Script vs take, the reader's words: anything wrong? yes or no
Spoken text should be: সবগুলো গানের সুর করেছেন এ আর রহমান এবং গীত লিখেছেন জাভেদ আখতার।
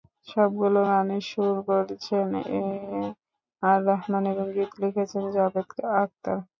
no